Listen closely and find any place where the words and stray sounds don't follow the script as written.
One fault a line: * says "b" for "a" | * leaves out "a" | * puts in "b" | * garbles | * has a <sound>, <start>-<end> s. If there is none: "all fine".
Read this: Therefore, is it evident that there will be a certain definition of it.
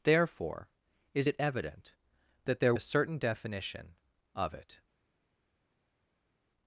* leaves out "will be"